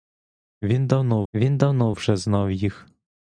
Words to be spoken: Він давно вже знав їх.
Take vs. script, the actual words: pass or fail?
fail